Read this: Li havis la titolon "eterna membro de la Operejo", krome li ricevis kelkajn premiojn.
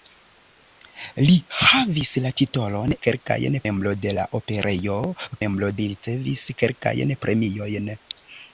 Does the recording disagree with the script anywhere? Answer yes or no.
yes